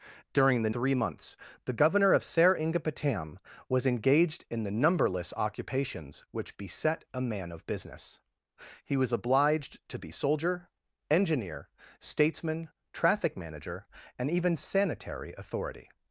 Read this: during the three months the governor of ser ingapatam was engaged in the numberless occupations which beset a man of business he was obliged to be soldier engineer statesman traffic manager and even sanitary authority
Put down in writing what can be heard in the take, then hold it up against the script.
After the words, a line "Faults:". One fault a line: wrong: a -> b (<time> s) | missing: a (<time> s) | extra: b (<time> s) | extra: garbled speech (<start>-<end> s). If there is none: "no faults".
during the three months the governor of ser ingapatam was engaged in the numberless occupations which beset a man of business he was obliged to be soldier engineer statesman traffic manager and even sanitary authority
Faults:
no faults